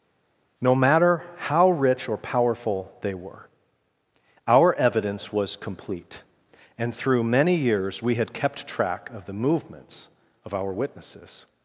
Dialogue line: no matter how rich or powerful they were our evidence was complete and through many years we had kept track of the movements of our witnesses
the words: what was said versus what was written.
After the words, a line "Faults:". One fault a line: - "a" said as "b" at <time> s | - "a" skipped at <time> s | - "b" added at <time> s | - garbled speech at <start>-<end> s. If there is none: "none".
no matter how rich or powerful they were our evidence was complete and through many years we had kept track of the movements of our witnesses
Faults:
none